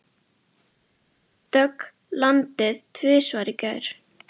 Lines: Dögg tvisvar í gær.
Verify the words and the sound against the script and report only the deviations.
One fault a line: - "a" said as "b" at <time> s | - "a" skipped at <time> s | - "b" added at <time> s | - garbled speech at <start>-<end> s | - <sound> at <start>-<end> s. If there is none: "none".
- "landaði" added at 2.3 s